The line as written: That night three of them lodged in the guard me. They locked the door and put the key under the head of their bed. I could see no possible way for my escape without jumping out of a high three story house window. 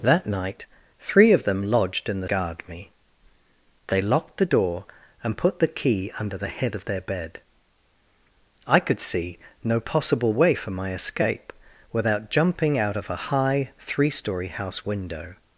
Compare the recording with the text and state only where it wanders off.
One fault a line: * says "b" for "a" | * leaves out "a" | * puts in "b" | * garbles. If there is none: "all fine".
all fine